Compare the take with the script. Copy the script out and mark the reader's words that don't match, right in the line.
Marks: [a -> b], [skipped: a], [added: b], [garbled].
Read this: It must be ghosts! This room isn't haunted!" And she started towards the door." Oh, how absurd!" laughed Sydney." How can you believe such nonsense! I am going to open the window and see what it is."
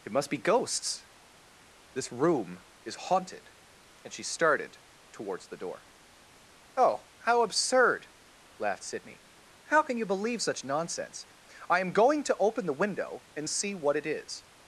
It must be ghosts! This room [isn't -> is] haunted!" And she started towards the door." Oh, how absurd!" laughed Sydney." How can you believe such nonsense! I am going to open the window and see what it is."